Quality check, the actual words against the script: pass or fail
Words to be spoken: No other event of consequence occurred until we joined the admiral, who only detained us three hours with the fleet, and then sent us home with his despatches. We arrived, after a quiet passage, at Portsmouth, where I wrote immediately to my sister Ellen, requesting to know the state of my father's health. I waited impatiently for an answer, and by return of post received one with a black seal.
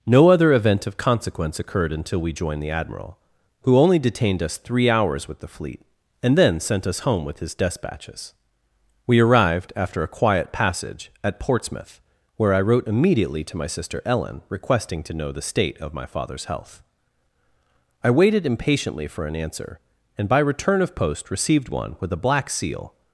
pass